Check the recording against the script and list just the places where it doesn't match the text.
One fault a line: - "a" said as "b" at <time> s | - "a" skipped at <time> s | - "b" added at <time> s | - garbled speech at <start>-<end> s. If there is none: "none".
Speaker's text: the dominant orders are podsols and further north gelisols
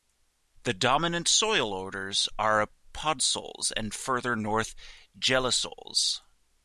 - "soil" added at 1.3 s